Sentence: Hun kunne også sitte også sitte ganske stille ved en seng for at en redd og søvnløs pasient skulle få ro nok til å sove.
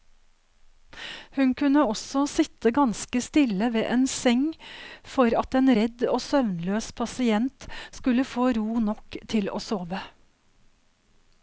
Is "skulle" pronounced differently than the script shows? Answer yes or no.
no